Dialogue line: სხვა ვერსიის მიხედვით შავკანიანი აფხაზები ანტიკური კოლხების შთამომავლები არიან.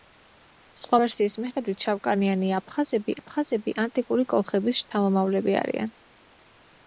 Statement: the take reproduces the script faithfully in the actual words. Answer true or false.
false